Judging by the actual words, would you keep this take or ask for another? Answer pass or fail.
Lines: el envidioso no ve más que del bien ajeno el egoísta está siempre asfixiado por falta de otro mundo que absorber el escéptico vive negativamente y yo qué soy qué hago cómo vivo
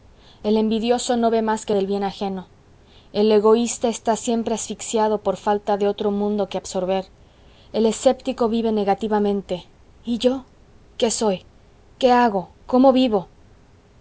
pass